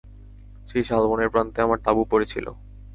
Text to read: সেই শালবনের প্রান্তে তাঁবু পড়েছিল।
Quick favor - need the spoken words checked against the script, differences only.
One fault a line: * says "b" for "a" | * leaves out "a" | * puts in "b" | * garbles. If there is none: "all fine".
* puts in "আমার"